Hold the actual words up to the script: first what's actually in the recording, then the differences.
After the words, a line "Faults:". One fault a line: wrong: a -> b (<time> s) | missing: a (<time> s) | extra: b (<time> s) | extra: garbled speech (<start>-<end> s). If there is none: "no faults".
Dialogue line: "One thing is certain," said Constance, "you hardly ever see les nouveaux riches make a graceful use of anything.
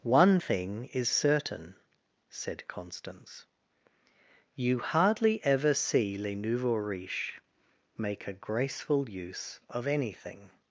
"One thing is certain," said Constance, "you hardly ever see les nouveaux riches make a graceful use of anything.
Faults:
no faults